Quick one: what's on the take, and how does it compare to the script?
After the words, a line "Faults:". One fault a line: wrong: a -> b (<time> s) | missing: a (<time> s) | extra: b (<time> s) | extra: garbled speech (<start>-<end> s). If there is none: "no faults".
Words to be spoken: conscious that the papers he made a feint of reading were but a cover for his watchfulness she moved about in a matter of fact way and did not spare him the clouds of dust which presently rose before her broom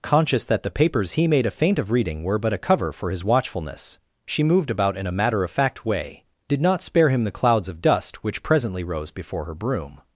conscious that the papers he made a feint of reading were but a cover for his watchfulness she moved about in a matter of fact way did not spare him the clouds of dust which presently rose before her broom
Faults:
missing: and (6.2 s)